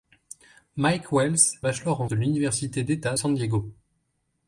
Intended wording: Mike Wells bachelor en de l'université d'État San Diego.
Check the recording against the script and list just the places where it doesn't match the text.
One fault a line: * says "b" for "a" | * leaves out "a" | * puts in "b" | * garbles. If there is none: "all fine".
all fine